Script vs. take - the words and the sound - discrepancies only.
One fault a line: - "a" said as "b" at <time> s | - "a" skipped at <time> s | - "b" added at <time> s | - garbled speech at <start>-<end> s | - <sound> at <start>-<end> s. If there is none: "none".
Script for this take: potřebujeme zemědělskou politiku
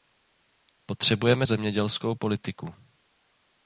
none